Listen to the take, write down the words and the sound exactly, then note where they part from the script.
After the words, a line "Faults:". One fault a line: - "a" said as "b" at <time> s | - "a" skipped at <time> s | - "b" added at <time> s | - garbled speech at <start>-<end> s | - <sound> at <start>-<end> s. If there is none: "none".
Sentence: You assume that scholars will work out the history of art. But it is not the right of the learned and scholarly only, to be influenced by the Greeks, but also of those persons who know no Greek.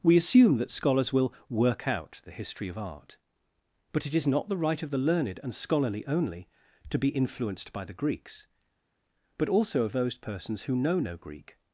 We assume that scholars will work out the history of art. But it is not the right of the learned and scholarly only, to be influenced by the Greeks, but also of those persons who know no Greek.
Faults:
- "You" said as "We" at 0.0 s